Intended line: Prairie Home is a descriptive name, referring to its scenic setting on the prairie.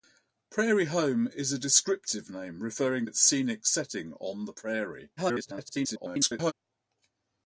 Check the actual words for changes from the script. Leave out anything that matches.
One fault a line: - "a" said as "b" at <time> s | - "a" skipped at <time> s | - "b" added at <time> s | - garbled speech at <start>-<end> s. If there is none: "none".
- "to" skipped at 3.0 s
- garbled speech at 5.2-6.5 s